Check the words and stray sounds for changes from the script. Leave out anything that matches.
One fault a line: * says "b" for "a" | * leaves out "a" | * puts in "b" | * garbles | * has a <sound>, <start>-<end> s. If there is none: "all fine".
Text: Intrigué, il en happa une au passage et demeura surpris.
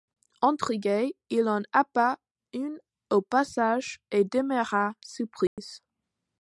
* has a dropout, 5.5-5.6 s